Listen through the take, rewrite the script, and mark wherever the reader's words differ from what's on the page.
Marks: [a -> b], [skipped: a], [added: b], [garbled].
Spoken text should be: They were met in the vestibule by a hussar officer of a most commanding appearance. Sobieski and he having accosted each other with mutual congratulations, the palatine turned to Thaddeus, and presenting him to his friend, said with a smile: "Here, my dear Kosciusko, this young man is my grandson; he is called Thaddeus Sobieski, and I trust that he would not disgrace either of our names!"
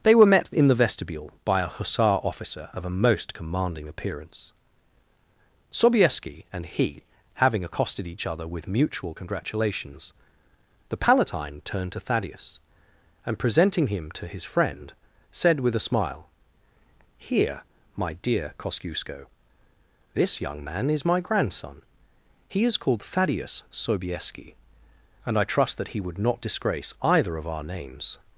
They were met in the vestibule by a hussar officer of a most commanding appearance. Sobieski and he having accosted each other with mutual congratulations, the palatine turned to Thaddeus, and presenting him to his friend, said with a smile: "Here, my dear Kosciusko, this young man is my grandson; he is called Thaddeus Sobieski, and I trust that he would not disgrace either of our names!"